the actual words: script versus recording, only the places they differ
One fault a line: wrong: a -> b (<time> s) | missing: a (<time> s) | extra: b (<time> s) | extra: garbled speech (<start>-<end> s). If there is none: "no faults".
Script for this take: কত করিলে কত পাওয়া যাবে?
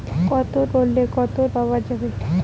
no faults